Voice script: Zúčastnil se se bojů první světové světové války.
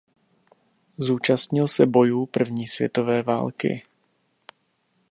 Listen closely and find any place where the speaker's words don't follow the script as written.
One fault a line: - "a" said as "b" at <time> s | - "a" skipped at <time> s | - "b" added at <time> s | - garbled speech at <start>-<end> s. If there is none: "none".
- "se" skipped at 1.9 s
- "světové" skipped at 3.2 s